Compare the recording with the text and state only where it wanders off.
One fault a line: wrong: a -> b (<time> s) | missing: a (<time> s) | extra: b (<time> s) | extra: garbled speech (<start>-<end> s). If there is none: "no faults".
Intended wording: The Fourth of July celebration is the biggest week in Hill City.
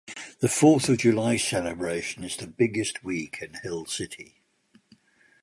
no faults